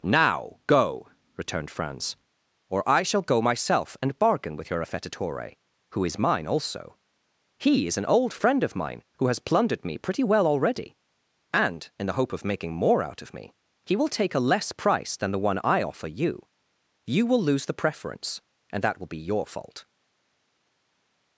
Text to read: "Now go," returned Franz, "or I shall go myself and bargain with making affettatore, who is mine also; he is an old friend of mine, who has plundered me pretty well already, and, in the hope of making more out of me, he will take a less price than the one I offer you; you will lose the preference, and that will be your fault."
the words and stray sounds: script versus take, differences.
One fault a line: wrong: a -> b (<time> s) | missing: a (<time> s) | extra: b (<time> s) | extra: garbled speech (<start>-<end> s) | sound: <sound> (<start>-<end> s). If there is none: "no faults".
wrong: making -> your (4.7 s)